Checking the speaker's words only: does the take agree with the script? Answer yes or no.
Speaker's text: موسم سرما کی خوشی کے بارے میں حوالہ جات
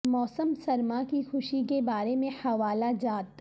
yes